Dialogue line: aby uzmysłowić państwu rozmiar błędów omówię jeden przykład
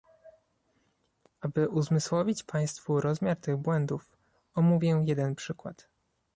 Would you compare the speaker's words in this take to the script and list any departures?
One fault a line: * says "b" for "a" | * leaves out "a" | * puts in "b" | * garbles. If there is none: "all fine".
* puts in "tych"